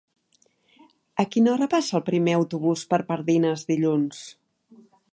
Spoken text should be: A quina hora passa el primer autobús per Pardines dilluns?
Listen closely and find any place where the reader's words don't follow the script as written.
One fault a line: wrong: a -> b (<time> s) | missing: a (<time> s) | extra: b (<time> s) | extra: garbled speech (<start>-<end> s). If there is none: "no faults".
no faults